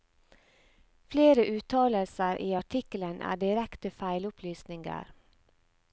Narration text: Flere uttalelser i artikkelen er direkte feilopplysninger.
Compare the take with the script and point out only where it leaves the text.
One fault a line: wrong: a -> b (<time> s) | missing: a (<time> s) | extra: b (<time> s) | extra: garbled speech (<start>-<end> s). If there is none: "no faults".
no faults